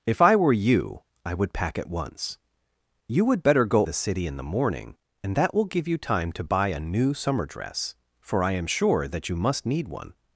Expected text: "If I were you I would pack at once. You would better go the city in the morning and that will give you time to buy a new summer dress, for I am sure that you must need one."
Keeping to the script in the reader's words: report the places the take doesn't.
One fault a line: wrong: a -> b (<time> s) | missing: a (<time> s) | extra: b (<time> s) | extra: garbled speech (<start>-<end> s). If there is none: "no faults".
no faults